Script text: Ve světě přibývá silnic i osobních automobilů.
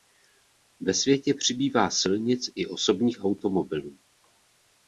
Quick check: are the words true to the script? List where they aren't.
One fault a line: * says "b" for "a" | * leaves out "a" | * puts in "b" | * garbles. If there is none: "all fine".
all fine